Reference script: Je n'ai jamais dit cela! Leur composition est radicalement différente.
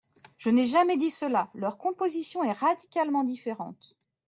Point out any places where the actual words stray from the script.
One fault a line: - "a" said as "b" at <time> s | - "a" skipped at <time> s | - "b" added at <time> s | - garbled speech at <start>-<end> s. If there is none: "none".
none